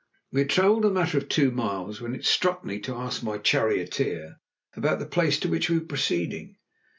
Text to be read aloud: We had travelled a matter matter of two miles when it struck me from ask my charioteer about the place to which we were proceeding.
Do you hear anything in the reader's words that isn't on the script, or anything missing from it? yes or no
yes